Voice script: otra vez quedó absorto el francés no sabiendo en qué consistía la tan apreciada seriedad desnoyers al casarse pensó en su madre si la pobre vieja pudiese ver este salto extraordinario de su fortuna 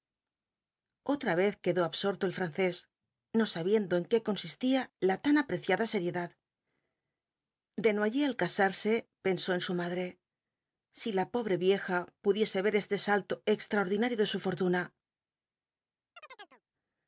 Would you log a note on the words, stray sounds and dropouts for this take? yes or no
yes